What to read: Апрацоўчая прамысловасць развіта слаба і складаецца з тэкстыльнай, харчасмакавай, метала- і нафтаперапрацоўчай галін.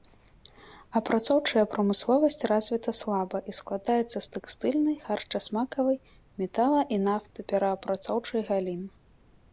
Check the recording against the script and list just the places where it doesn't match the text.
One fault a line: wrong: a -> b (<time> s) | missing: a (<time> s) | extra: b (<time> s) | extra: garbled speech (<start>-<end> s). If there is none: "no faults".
no faults